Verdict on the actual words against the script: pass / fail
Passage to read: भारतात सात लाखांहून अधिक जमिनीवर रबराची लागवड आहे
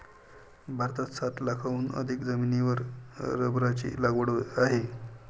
pass